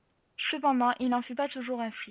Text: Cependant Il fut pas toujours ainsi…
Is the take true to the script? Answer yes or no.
no